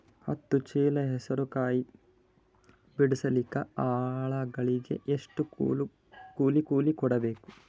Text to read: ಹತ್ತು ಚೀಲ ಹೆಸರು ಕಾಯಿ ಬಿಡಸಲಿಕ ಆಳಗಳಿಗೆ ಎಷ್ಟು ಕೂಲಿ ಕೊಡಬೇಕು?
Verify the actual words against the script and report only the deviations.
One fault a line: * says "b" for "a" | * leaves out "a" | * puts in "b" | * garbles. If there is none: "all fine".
* puts in "ಕೂಲಿ"